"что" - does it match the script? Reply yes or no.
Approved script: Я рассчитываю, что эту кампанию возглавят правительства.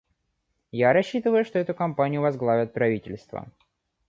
yes